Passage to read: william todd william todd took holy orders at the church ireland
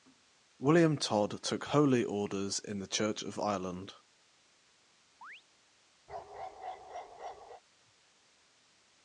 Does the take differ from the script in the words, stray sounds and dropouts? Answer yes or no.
yes